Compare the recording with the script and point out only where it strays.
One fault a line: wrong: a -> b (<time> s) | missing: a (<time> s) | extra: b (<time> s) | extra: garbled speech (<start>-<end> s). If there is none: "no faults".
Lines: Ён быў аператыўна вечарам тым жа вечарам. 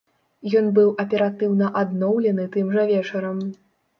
wrong: вечарам -> адноўлены (1.8 s)